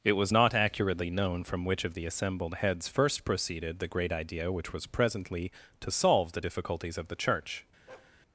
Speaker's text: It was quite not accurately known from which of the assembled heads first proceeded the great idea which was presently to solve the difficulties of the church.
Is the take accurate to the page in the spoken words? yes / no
no